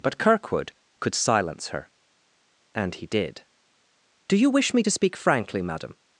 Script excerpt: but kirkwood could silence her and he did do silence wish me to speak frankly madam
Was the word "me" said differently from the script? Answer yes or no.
no